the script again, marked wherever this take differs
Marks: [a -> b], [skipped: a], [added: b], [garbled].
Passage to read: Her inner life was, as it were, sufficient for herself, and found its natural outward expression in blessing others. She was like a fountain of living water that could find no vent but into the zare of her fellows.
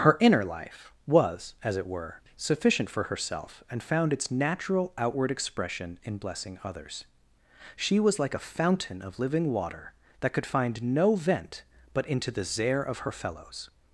Her inner life was, as it were, sufficient for herself, and found its natural outward expression in blessing others. She was like a fountain of living water that could find no vent but into the zare of her fellows.